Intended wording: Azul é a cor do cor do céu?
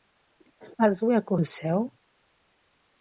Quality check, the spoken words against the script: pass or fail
fail